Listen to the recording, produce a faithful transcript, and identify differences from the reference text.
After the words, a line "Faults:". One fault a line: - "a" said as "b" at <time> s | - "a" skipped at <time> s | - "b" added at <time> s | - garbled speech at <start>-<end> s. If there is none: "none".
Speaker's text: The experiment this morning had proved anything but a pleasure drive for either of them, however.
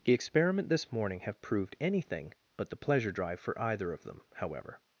The experiment this morning have proved anything but the pleasure drive for either of them, however.
Faults:
- "had" said as "have" at 1.2 s
- "a" said as "the" at 2.7 s